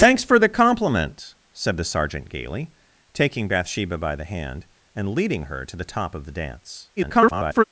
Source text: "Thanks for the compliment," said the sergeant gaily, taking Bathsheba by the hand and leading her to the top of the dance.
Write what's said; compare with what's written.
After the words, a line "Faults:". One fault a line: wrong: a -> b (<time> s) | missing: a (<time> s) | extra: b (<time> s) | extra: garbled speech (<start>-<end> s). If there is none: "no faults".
"Thanks for the compliment," said the sergeant gaily, taking Bathsheba by the hand and leading her to the top of the dance. [garbled]
Faults:
extra: garbled speech (7.0-7.6 s)